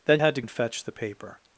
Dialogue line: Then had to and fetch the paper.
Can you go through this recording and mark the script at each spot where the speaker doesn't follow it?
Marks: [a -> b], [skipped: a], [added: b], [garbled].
Then had to and fetch the paper.